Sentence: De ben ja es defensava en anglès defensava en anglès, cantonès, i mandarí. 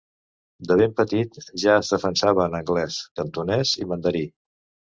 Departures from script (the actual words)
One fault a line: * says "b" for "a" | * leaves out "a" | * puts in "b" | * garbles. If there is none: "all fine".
* puts in "petit"
* leaves out "defensava en anglès"